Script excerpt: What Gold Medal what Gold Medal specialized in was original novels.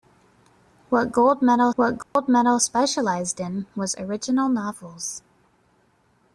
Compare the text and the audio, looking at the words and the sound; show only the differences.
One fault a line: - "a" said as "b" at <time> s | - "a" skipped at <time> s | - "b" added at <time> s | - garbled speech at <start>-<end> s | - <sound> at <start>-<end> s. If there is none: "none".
- dropout at 2.0-2.2 s